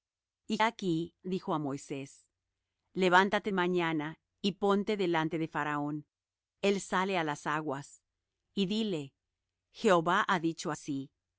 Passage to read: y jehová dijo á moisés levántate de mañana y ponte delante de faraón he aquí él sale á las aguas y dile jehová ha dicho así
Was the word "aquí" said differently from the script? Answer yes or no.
yes